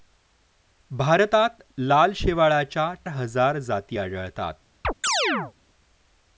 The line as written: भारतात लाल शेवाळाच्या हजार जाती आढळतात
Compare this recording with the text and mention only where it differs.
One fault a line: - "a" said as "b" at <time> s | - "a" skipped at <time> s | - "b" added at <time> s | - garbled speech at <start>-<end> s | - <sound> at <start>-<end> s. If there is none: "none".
- chirp at 4.8-5.5 s